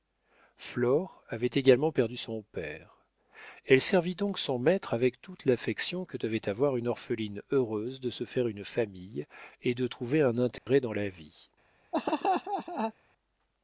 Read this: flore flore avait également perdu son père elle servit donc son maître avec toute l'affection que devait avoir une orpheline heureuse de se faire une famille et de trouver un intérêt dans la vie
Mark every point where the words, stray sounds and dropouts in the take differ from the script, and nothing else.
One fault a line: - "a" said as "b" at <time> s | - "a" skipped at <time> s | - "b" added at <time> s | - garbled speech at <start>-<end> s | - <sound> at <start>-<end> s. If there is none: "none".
- "flore" skipped at 1.2 s
- dropout at 10.6-10.7 s
- laugh at 11.9-12.9 s